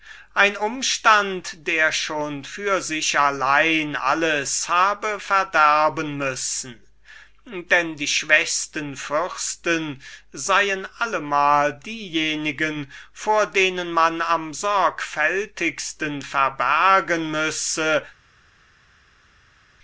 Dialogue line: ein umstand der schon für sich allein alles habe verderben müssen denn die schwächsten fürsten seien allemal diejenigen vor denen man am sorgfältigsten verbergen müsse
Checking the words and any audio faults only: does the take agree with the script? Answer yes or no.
yes